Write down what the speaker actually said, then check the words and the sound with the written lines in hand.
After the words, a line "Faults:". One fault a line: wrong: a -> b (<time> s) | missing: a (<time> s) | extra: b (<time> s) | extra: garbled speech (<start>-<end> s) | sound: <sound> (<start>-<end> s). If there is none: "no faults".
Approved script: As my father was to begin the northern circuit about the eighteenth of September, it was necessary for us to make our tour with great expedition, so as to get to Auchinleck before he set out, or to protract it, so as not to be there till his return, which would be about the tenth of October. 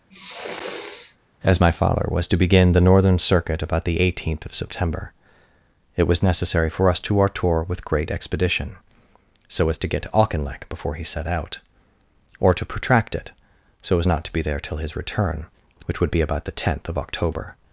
As my father was to begin the northern circuit about the eighteenth of September, it was necessary for us to our tour with great expedition, so as to get to Auchinleck before he set out, or to protract it, so as not to be there till his return, which would be about the tenth of October.
Faults:
sound: sniff (0.1-1.2 s)
missing: make (7.2 s)